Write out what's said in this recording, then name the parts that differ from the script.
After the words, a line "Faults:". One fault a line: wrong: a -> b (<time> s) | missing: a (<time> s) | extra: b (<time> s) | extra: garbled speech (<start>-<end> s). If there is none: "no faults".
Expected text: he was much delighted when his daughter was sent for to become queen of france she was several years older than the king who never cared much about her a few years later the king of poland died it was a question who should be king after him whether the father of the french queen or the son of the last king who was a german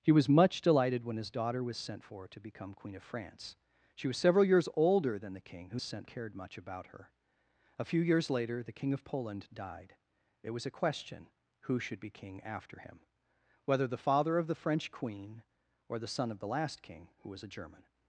he was much delighted when his daughter was sent for to become queen of france she was several years older than the king who sent cared much about her a few years later the king of poland died it was a question who should be king after him whether the father of the french queen or the son of the last king who was a german
Faults:
wrong: never -> sent (5.8 s)